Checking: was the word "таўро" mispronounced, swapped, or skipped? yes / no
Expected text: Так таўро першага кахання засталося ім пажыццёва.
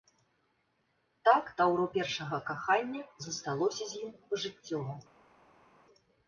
no